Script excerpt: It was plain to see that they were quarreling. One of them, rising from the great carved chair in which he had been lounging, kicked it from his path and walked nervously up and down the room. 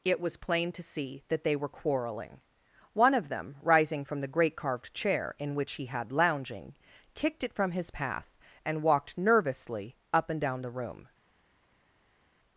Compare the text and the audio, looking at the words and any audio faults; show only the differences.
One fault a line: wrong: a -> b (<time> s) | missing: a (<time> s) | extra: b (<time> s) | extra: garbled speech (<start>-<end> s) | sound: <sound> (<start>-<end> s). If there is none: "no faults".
missing: been (6.1 s)